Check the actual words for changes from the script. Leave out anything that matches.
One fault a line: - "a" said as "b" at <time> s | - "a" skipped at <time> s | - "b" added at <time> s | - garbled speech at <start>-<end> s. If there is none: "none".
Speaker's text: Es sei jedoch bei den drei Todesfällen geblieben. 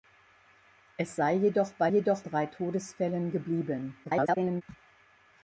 - "den" said as "jedoch" at 1.9 s
- garbled speech at 4.0-4.6 s